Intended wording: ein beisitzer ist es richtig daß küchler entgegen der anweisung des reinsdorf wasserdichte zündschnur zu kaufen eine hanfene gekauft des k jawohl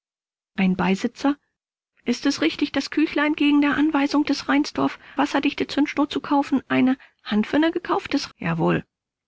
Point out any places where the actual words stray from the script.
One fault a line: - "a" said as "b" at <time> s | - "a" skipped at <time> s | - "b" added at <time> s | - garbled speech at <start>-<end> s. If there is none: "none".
none